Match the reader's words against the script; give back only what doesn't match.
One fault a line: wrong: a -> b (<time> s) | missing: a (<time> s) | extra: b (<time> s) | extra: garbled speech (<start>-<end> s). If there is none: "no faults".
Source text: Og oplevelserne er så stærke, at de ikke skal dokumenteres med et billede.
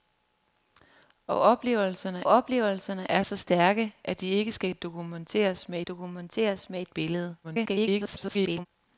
extra: oplevelserne (2.3 s)
extra: dokumenteres med (5.8 s)
extra: garbled speech (7.4-8.7 s)